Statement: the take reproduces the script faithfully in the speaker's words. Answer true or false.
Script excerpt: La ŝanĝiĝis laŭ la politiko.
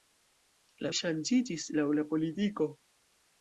true